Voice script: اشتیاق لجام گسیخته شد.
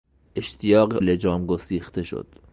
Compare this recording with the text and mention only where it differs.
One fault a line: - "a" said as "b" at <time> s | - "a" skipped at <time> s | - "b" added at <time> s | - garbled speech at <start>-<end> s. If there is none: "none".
none